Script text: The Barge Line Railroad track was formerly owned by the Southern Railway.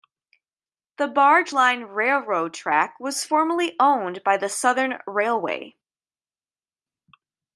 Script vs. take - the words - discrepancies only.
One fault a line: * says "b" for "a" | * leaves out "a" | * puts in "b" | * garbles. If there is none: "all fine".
all fine